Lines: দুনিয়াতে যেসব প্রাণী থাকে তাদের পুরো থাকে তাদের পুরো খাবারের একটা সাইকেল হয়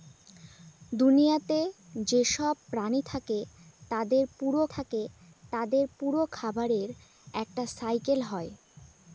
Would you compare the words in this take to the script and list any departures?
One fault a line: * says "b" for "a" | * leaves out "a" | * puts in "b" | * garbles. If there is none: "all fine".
all fine